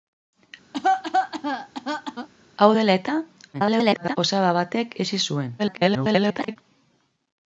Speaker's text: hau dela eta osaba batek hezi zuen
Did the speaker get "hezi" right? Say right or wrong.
right